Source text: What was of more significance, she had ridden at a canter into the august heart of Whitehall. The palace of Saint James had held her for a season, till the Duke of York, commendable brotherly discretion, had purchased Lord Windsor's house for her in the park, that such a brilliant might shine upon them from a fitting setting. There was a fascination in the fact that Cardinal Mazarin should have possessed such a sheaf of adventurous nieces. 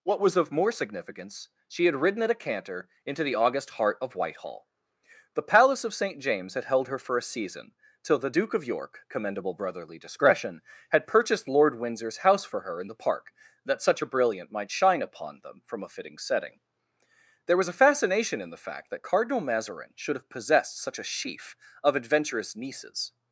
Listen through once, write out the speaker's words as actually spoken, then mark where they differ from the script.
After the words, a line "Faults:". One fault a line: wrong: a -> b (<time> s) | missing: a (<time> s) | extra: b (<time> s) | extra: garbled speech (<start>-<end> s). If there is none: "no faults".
What was of more significance, she had ridden at a canter into the august heart of Whitehall. The palace of Saint James had held her for a season, till the Duke of York, commendable brotherly discretion, had purchased Lord Windsor's house for her in the park, that such a brilliant might shine upon them from a fitting setting. There was a fascination in the fact that Cardinal Mazarin should have possessed such a sheaf of adventurous nieces.
Faults:
no faults